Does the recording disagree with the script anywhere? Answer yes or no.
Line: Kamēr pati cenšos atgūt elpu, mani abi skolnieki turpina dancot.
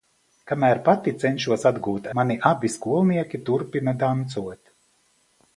yes